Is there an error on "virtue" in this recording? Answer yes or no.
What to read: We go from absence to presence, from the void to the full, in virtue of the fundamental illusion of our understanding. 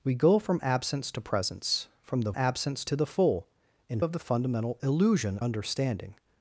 yes